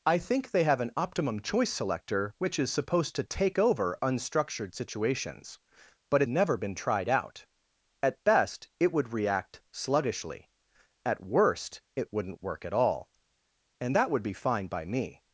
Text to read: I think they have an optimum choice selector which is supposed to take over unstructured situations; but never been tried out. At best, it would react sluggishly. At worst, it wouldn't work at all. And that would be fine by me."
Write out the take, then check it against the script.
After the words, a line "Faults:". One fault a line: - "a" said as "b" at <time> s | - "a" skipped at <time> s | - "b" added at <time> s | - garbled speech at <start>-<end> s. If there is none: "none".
I think they have an optimum choice selector which is supposed to take over unstructured situations; but never been tried out. At best, it would react sluggishly. At worst, it wouldn't work at all. And that would be fine by me."
Faults:
none